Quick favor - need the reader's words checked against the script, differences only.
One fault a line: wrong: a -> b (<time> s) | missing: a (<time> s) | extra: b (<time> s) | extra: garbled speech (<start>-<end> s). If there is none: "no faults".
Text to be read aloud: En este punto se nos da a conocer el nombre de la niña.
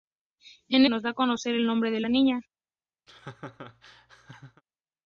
missing: este punto se (0.9 s)